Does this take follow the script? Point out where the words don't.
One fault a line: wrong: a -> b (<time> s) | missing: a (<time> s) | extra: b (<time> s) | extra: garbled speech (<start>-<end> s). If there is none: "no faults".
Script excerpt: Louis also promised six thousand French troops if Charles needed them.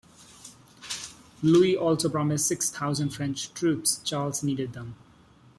missing: if (4.0 s)